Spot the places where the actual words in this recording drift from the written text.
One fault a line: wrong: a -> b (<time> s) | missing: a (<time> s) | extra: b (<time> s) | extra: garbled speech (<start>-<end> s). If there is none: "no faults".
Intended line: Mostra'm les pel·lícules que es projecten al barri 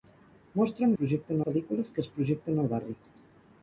wrong: les -> projecten (1.0 s)